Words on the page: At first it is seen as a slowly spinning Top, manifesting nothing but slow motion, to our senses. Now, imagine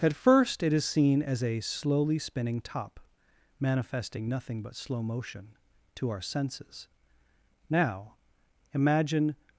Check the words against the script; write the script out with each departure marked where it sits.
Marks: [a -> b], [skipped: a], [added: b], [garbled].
At first it is seen as a slowly spinning Top, manifesting nothing but slow motion, to our senses. Now, imagine